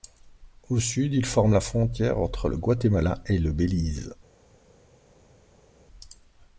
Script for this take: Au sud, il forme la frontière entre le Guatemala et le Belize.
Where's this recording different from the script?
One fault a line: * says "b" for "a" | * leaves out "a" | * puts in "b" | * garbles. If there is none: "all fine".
all fine